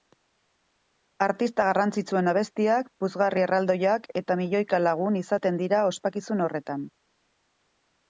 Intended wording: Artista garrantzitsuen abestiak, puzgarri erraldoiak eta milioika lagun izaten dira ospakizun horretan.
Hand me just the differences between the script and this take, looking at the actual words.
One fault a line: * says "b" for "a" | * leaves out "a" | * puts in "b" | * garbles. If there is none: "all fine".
all fine